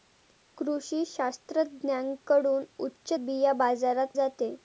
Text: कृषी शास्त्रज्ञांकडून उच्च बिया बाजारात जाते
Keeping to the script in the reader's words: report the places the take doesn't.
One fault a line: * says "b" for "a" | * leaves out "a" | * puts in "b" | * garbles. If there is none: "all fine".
all fine